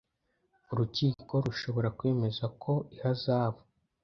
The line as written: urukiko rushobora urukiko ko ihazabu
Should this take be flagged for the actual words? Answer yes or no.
yes